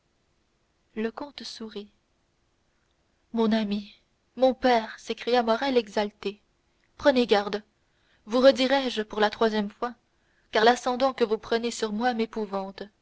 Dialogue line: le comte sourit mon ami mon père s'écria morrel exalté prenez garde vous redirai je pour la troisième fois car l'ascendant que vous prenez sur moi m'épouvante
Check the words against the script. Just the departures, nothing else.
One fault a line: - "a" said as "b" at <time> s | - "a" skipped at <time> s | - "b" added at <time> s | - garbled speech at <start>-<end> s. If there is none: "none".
none